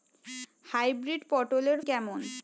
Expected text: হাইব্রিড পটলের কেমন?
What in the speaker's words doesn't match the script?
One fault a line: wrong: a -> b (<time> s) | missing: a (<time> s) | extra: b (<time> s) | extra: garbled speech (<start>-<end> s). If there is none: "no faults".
no faults